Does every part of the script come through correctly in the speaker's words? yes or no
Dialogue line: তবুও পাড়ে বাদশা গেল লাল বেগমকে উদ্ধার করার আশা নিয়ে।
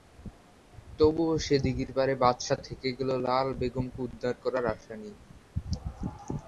no